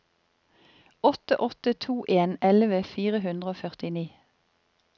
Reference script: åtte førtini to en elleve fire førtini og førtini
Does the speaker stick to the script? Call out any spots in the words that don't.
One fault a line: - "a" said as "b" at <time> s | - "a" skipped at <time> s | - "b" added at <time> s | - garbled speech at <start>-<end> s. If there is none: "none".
- "førtini" said as "åtte" at 1.4 s
- "førtini" said as "hundre" at 3.3 s